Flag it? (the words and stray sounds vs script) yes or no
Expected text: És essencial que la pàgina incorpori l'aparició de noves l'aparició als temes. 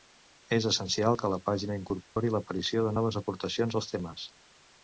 yes